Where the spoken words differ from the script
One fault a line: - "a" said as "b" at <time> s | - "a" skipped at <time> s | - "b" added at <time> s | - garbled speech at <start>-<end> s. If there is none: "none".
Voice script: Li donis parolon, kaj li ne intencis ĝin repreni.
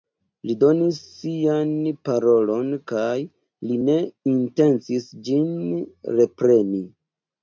- "sian" added at 1.1 s